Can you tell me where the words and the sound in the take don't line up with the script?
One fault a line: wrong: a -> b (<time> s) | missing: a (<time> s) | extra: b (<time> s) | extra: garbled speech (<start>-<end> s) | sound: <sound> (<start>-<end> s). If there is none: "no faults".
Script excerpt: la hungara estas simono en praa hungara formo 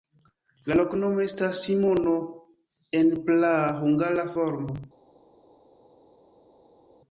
wrong: hungara -> loknomo (0.8 s)